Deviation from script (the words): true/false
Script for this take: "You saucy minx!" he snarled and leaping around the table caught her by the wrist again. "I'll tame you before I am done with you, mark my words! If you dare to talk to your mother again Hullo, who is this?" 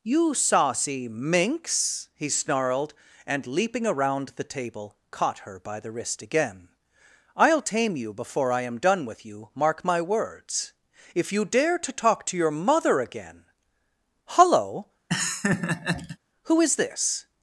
false